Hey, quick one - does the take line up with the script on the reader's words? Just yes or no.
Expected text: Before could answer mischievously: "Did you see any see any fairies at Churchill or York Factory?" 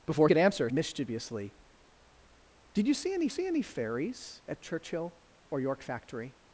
yes